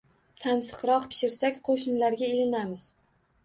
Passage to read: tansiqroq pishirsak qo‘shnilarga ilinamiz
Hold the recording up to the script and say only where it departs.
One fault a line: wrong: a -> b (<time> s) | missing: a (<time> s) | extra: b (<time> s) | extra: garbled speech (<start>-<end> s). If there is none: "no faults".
no faults